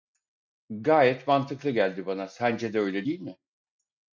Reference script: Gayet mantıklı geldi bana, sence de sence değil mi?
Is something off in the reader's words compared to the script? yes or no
yes